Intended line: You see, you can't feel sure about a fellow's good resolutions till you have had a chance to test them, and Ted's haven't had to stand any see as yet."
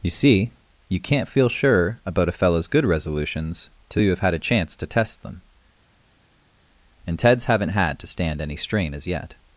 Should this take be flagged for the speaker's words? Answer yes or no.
yes